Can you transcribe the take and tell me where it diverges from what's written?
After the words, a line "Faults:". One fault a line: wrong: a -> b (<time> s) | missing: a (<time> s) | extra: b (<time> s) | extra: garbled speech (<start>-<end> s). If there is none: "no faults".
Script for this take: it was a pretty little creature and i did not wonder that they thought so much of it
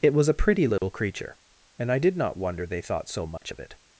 it was a pretty little creature and i did not wonder they thought so much of it
Faults:
missing: that (2.6 s)